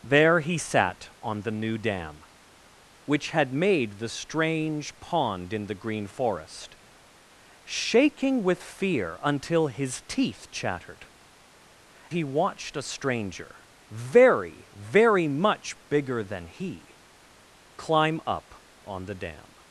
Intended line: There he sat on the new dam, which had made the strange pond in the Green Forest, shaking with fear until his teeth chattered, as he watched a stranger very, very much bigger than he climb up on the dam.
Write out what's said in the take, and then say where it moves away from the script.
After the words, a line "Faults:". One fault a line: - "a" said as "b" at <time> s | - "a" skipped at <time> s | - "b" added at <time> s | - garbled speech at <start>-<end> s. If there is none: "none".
There he sat on the new dam, which had made the strange pond in the Green Forest, shaking with fear until his teeth chattered, he watched a stranger very, very much bigger than he climb up on the dam.
Faults:
- "as" skipped at 11.1 s